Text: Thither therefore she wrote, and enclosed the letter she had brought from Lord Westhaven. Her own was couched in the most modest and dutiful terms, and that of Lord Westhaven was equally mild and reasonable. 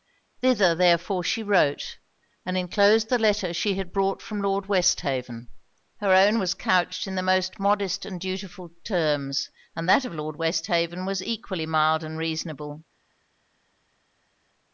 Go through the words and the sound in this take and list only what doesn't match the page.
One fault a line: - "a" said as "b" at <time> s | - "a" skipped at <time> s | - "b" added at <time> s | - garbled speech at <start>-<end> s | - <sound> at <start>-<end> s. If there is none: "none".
none